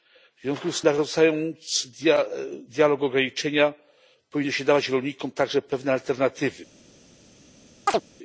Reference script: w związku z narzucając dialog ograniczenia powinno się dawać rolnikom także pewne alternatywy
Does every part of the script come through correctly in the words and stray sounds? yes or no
no